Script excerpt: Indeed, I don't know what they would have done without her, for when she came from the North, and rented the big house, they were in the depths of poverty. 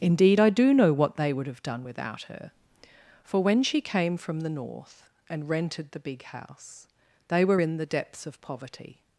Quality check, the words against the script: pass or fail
fail